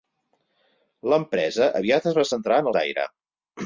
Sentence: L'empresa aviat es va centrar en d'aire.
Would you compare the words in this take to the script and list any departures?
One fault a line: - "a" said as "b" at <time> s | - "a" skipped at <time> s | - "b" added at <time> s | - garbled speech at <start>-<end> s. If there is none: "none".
none